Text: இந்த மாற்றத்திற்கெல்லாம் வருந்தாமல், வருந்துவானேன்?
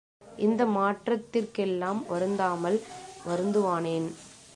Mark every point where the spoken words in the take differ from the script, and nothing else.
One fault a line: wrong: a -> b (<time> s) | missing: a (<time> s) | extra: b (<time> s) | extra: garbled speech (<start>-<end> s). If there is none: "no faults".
no faults